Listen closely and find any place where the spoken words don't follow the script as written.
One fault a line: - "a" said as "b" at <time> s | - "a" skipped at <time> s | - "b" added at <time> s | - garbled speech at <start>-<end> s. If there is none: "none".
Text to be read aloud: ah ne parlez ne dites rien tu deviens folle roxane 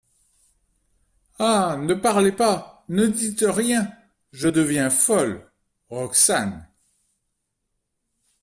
- "pas" added at 2.3 s
- "tu" said as "je" at 4.3 s